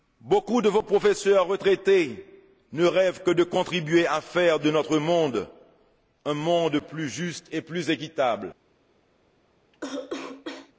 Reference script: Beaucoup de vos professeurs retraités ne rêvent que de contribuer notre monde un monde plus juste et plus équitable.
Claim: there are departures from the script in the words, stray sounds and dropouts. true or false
true